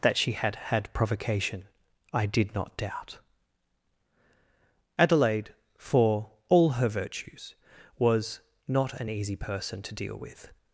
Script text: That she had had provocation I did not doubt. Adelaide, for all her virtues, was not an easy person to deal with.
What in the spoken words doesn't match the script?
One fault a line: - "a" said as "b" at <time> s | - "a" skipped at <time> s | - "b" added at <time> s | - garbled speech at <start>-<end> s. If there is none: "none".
none